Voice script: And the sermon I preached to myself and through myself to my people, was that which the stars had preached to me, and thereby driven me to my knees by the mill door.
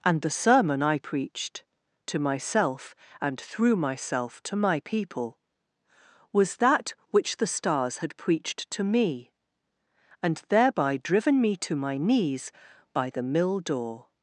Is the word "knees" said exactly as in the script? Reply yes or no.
yes